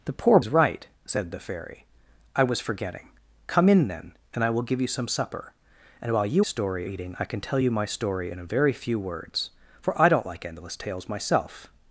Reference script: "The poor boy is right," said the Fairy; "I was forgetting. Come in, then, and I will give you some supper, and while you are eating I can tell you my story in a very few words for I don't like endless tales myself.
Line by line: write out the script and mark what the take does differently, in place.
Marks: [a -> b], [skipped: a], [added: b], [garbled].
"The poor [skipped: boy] is right," said the Fairy; "I was forgetting. Come in, then, and I will give you some supper, and while you [are -> story] eating I can tell you my story in a very few words for I don't like endless tales myself.